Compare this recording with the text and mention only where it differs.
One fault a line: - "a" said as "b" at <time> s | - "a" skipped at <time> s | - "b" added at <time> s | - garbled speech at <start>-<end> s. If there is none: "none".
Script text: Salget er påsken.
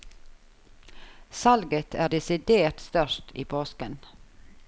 - "desidert størst i" added at 2.0 s